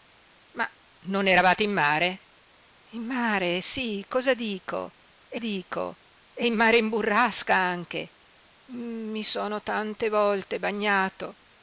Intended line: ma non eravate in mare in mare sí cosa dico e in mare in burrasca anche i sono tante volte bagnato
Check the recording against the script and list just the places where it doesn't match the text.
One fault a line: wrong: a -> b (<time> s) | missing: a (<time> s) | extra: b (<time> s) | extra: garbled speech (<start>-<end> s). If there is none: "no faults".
extra: dico e (5.4 s)